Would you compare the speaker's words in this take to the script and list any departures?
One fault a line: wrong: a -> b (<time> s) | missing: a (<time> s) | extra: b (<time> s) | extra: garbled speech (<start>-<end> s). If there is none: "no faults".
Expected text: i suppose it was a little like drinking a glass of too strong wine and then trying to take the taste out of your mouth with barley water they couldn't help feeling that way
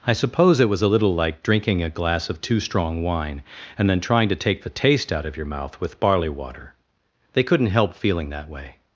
no faults